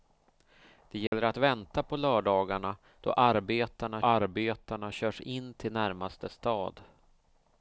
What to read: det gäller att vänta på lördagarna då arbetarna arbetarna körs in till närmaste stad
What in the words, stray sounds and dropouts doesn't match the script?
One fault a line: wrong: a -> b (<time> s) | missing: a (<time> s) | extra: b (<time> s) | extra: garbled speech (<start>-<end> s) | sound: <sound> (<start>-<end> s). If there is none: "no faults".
sound: dropout (1.1-1.1 s)